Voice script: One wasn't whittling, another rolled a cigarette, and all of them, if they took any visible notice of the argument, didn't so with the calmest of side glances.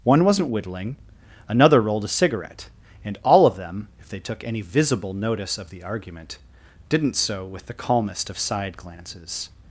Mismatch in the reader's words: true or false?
false